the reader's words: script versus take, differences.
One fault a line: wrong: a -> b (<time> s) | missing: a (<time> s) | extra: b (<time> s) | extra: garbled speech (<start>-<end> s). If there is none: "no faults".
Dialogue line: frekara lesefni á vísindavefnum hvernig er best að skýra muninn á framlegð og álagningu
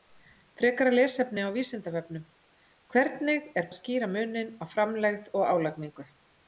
missing: best (3.7 s)